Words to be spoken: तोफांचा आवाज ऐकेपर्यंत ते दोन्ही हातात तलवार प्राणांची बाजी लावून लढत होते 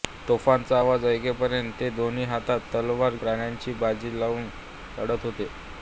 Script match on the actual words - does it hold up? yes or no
yes